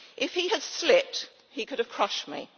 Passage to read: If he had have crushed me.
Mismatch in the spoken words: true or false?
true